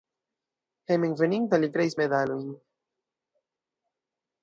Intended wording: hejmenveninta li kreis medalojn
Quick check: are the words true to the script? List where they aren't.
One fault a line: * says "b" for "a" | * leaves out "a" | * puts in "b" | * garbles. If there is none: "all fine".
all fine